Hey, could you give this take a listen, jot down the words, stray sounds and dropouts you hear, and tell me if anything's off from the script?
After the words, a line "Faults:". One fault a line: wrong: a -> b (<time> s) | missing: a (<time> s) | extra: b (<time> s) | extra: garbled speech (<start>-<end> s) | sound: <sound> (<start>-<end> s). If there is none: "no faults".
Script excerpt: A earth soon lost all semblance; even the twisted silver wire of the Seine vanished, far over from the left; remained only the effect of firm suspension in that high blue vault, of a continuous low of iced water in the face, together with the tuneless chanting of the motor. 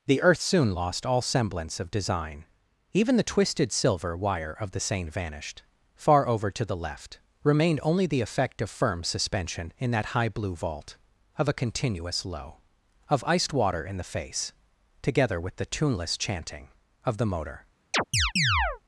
The earth soon lost all semblance of design; even the twisted silver wire of the Seine vanished, far over to the left; remained only the effect of firm suspension in that high blue vault, of a continuous low of iced water in the face, together with the tuneless chanting of the motor.
Faults:
wrong: A -> The (0.1 s)
extra: of design (1.8 s)
wrong: from -> to (6.5 s)
sound: chirp (17.9-18.8 s)